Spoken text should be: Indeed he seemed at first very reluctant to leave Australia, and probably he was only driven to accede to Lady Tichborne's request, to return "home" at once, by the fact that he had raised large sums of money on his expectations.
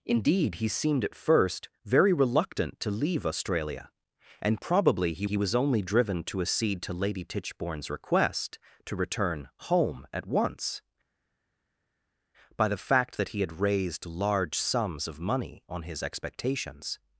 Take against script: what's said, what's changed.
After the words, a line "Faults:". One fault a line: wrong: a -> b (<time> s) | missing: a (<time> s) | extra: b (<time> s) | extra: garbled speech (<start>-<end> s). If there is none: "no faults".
Indeed he seemed at first very reluctant to leave Australia, and probably he he was only driven to accede to Lady Tichborne's request, to return "home" at once, by the fact that he had raised large sums of money on his expectations.
Faults:
extra: he (5.2 s)